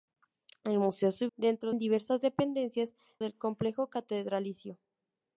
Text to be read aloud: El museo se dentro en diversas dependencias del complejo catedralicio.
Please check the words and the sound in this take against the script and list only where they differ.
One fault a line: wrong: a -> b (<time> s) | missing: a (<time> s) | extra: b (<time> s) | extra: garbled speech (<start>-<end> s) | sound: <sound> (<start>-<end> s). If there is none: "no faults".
no faults